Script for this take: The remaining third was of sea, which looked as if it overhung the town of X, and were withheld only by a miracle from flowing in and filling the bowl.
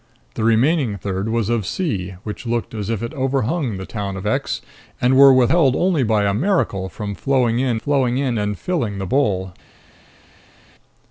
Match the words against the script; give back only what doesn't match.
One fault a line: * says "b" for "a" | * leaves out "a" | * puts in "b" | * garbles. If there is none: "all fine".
* puts in "flowing in"